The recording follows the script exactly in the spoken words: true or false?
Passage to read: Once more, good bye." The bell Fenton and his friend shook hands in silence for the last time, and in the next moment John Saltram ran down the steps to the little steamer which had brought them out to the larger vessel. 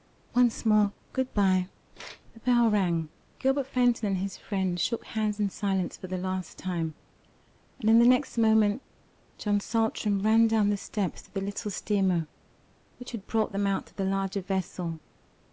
false